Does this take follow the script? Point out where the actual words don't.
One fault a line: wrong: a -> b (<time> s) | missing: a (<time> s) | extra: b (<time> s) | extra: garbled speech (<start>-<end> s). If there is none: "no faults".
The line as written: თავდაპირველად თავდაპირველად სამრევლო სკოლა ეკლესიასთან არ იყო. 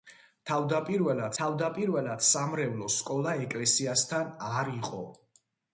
no faults